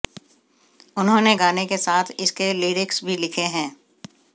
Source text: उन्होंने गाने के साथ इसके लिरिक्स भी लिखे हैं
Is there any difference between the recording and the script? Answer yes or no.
no